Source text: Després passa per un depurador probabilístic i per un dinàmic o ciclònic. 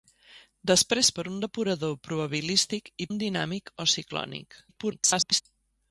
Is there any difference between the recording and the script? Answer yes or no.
yes